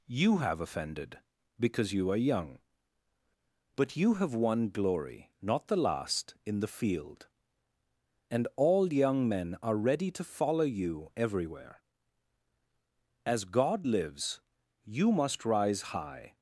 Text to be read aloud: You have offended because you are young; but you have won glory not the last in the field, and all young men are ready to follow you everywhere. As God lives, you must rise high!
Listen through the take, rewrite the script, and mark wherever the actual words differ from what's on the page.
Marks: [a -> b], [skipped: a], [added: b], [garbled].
You have offended because you are young; but you have won glory not the last in the field, and all young men are ready to follow you everywhere. As God lives, you must rise high!